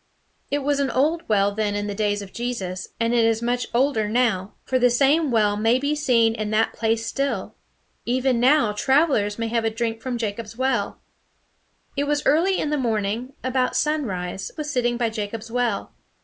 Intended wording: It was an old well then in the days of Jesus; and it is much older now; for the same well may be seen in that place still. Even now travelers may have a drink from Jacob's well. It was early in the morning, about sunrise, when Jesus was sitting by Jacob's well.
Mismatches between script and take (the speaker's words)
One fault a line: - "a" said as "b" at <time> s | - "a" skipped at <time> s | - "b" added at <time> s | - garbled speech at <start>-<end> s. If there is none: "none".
- "when Jesus" skipped at 14.5 s